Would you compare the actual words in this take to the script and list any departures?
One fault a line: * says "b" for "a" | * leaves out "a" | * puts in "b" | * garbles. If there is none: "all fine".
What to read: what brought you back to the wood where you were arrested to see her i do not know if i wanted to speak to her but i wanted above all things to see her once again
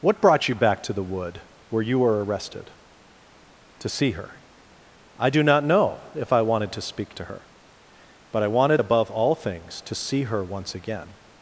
all fine